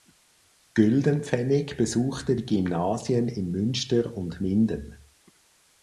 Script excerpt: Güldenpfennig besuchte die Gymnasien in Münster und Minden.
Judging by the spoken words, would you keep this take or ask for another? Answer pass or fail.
pass